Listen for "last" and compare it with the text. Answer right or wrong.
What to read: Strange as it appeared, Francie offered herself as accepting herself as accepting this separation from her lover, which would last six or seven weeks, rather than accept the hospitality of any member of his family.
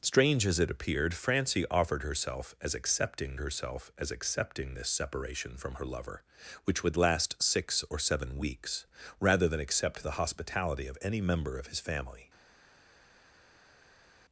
right